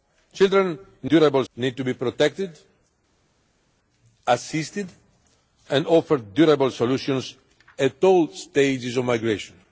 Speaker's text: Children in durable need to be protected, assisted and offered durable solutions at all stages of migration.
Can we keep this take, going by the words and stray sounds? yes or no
yes